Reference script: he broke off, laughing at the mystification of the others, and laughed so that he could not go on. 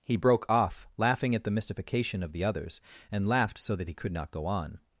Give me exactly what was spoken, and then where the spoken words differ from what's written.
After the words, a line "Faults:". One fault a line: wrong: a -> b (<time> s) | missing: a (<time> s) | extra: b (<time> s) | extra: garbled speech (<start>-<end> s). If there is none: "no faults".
he broke off, laughing at the mystification of the others, and laughed so that he could not go on.
Faults:
no faults